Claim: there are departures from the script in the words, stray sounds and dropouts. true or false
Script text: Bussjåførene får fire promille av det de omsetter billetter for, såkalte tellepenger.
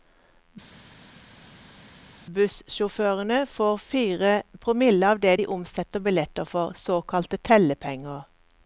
false